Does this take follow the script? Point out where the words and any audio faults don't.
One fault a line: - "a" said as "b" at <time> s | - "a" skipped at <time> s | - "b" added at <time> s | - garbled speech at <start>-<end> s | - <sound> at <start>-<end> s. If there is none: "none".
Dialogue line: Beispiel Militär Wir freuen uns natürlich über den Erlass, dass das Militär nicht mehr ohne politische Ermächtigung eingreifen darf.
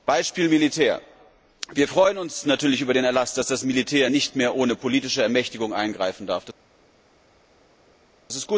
none